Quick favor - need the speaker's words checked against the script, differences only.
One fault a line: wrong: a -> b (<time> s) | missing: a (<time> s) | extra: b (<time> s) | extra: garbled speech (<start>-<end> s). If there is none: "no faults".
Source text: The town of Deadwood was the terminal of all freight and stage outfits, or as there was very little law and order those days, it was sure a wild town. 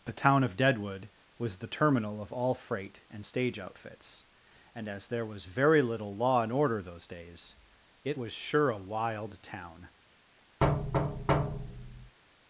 wrong: or -> and (4.7 s)